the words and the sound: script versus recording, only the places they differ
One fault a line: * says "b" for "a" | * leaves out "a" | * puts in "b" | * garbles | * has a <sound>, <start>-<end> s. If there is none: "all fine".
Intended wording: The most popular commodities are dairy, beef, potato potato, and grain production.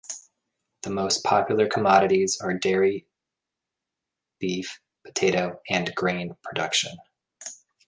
* leaves out "potato"